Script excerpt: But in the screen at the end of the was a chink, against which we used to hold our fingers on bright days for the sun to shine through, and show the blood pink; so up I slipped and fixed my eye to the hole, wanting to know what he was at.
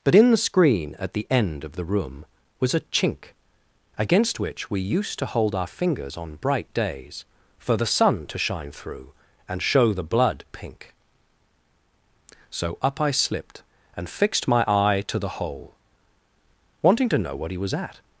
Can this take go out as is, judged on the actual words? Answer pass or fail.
fail